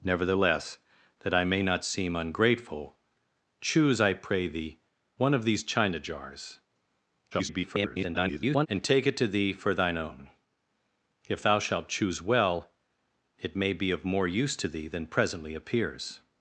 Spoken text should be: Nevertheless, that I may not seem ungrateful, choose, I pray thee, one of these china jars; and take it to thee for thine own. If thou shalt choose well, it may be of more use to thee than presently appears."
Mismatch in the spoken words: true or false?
true